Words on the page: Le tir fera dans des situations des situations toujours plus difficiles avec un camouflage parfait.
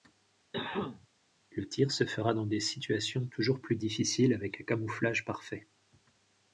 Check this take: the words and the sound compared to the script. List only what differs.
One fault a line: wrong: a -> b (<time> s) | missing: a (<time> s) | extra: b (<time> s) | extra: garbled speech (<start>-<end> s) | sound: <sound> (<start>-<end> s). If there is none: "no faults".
sound: cough (0.5-1.1 s)
extra: se (1.9 s)
missing: des situations (3.3 s)